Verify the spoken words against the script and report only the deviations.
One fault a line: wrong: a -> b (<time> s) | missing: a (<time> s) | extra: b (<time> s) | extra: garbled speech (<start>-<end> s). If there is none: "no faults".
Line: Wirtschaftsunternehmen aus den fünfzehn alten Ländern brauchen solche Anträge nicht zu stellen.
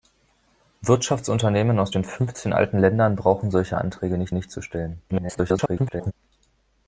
extra: nicht (4.3 s)
extra: garbled speech (5.1-6.1 s)